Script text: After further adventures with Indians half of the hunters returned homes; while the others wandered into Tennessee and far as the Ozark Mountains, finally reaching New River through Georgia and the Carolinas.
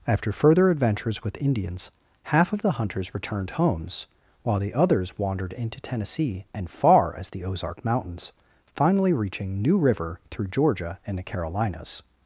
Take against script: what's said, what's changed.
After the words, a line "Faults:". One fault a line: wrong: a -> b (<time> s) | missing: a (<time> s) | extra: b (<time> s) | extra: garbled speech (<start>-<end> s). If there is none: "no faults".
After further adventures with Indians half of the hunters returned homes; while the others wandered into Tennessee and far as the Ozark Mountains, finally reaching New River through Georgia and the Carolinas.
Faults:
no faults